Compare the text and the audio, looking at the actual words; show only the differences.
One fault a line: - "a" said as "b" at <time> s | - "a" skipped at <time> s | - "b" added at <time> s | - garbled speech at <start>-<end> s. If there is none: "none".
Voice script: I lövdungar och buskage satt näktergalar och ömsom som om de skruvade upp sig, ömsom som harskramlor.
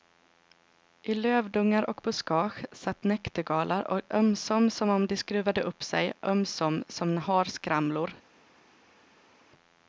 none